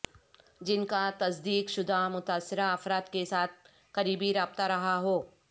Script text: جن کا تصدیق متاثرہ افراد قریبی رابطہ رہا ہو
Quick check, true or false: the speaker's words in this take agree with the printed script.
false